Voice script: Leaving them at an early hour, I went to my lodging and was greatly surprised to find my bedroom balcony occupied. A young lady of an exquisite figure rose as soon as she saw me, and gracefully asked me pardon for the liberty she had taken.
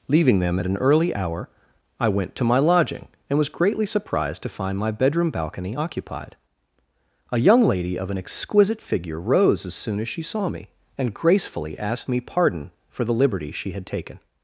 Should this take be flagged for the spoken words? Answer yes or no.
no